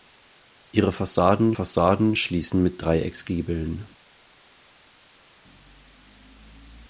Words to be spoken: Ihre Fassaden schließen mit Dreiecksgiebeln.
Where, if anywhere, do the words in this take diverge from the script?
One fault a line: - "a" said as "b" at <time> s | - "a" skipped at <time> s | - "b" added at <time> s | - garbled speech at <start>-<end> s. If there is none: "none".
- "Fassaden" added at 1.5 s